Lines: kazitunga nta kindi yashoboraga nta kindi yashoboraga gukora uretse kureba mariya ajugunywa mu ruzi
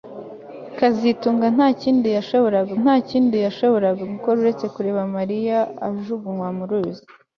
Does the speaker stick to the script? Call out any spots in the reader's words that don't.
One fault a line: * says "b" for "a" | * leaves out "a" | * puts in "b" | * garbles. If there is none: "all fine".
all fine